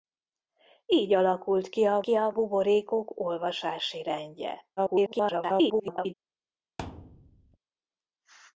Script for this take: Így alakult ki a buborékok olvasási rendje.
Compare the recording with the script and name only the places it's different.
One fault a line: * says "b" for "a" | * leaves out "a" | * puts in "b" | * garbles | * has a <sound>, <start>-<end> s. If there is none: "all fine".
* puts in "ki a"
* garbles
* has a thud, 6.8-7.6 s